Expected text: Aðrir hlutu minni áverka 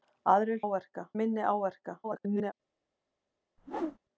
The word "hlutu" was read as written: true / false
false